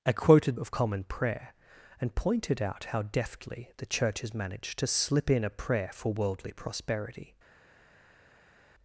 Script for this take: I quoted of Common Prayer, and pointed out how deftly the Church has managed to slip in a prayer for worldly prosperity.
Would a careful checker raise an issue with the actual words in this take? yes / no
no